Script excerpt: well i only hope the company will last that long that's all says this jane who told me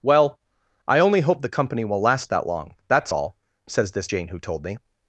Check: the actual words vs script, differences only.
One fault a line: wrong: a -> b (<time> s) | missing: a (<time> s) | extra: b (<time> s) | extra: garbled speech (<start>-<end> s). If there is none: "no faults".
no faults